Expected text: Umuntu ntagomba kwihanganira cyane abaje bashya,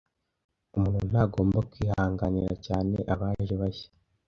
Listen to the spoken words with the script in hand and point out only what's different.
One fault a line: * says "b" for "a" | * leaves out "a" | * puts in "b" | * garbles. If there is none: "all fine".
all fine